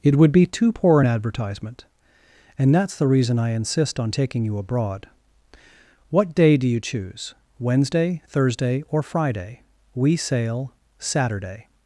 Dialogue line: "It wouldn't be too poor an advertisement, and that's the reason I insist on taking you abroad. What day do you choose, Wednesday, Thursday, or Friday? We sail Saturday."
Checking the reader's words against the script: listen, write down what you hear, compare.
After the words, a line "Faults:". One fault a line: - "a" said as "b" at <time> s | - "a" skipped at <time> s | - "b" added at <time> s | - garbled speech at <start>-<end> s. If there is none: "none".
"It would be too poor an advertisement, and that's the reason I insist on taking you abroad. What day do you choose, Wednesday, Thursday, or Friday? We sail Saturday."
Faults:
- "wouldn't" said as "would" at 0.1 s